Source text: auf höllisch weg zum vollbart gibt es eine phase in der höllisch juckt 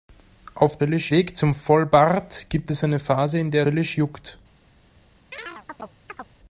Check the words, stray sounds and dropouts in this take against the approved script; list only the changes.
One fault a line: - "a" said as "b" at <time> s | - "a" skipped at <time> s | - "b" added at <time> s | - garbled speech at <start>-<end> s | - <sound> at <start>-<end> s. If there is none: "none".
- chirp at 5.3-6.3 s